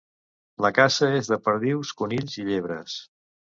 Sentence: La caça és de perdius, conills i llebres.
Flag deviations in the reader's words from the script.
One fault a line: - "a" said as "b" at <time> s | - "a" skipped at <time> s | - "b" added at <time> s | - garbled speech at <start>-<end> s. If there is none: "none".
none